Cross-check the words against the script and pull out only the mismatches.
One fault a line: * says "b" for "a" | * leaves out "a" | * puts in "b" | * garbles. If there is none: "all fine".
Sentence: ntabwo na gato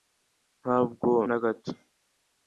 all fine